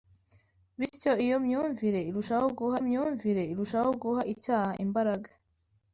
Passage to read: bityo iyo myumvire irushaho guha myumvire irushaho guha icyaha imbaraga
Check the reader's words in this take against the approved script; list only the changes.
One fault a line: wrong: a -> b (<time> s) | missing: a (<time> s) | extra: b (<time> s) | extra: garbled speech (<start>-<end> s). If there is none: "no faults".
no faults